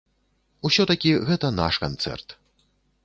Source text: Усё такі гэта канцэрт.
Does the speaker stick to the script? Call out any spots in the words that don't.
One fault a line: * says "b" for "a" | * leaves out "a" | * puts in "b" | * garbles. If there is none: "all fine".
* puts in "наш"